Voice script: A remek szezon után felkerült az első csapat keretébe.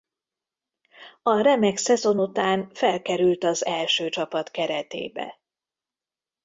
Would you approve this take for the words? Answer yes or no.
yes